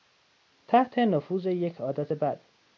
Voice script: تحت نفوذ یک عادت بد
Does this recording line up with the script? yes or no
yes